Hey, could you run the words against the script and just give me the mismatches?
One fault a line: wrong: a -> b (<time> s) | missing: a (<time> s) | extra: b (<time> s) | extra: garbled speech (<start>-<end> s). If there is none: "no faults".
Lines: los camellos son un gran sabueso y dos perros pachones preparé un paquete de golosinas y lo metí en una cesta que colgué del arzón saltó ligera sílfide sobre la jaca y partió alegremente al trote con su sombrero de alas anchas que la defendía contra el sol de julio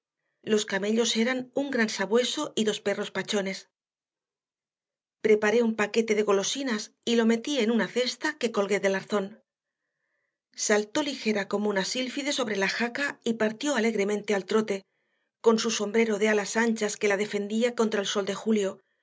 wrong: son -> eran (1.1 s)
extra: como una (11.5 s)